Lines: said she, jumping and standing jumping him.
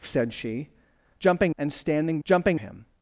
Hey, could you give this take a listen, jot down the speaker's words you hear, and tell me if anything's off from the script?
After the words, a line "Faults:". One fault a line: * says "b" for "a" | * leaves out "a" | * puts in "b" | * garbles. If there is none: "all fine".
said she, jumping and standing jumping him.
Faults:
all fine